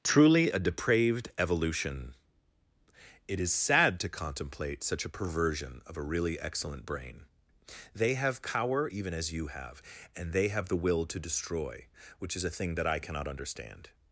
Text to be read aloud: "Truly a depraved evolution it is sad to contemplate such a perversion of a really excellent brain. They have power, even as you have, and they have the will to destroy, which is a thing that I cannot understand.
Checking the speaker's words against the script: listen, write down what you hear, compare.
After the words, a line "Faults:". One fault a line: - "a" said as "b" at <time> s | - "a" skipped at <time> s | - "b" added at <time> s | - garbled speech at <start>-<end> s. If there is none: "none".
"Truly a depraved evolution it is sad to contemplate such a perversion of a really excellent brain. They have power, even as you have, and they have the will to destroy, which is a thing that I cannot understand.
Faults:
none